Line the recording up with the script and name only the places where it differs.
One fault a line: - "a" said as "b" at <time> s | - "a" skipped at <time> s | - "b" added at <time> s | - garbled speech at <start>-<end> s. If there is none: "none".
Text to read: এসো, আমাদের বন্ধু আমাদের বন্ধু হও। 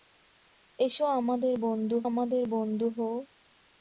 none